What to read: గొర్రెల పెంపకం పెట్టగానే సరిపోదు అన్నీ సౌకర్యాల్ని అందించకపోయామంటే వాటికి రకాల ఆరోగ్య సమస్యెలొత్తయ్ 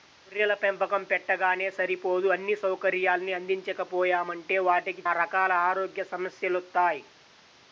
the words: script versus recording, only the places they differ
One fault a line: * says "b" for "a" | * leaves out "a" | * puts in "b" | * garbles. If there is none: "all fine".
all fine